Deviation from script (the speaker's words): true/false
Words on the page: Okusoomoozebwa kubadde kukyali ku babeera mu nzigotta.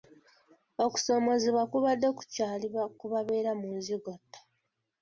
false